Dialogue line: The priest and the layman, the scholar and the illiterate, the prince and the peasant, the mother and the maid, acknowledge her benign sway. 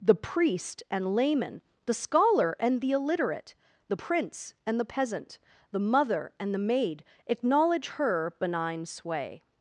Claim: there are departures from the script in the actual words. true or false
true